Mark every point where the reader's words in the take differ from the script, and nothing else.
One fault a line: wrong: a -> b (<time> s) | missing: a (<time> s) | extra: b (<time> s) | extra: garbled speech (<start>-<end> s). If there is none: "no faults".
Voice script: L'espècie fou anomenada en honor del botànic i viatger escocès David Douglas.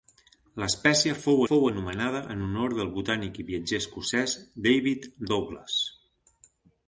extra: fou (1.5 s)